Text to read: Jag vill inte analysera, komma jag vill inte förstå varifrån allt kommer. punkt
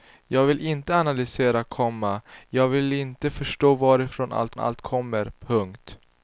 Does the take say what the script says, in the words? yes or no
no